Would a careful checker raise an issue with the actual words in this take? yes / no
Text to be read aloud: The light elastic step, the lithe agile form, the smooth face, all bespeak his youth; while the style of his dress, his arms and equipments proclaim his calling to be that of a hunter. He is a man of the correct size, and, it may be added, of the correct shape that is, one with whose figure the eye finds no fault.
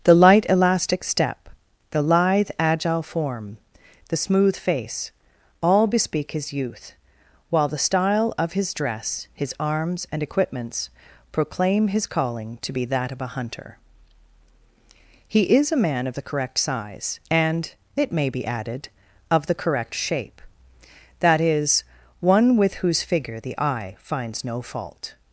no